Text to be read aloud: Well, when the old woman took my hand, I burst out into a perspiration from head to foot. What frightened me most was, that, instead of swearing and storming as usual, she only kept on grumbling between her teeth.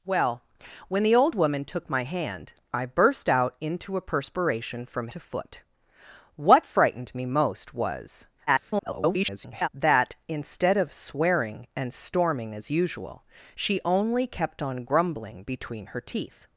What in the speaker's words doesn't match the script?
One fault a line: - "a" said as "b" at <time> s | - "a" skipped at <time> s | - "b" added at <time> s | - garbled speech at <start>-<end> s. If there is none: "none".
- "head" skipped at 5.1 s
- garbled speech at 8.5-9.7 s